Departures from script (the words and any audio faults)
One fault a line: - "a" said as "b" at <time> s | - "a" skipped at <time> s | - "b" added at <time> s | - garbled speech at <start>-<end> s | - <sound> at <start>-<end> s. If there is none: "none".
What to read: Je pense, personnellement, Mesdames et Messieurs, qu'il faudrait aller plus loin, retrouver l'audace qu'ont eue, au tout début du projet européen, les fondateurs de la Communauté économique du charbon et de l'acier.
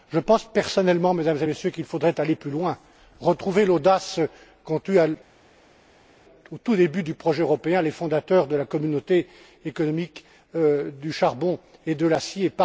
none